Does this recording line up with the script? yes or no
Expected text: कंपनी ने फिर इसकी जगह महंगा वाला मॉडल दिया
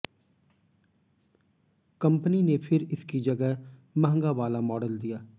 yes